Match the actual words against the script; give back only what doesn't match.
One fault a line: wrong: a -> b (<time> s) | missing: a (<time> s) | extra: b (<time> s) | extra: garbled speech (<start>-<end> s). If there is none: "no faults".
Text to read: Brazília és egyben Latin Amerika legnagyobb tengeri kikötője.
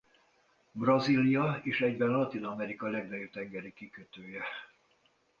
no faults